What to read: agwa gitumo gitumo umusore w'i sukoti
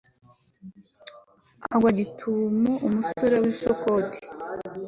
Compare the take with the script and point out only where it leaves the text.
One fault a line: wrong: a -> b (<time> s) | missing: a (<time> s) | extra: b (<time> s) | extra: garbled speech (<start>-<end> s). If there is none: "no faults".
missing: gitumo (2.7 s)